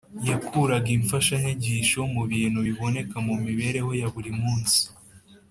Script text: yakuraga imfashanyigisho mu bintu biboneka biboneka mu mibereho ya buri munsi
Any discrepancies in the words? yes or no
yes